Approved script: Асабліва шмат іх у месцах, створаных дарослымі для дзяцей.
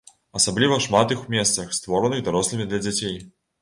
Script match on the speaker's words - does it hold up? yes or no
yes